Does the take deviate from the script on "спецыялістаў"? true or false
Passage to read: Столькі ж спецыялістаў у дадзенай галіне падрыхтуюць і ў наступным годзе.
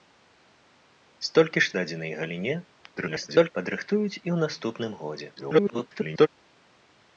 true